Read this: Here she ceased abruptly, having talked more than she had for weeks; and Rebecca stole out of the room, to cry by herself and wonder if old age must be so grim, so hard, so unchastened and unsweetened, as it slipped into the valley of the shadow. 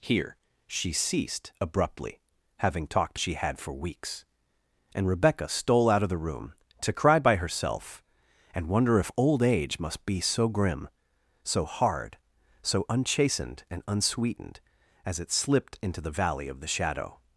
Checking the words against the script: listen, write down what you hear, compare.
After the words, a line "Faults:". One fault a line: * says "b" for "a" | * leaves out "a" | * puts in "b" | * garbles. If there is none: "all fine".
Here she ceased abruptly, having talked she had for weeks; and Rebecca stole out of the room, to cry by herself and wonder if old age must be so grim, so hard, so unchastened and unsweetened, as it slipped into the valley of the shadow.
Faults:
* leaves out "more than"